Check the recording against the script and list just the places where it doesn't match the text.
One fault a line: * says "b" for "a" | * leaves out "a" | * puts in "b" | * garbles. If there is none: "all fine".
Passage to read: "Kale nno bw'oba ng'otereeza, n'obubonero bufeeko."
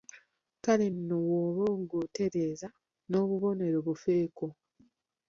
all fine